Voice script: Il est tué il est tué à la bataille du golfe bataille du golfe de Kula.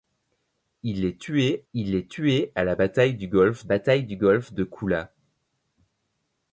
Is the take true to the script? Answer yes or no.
yes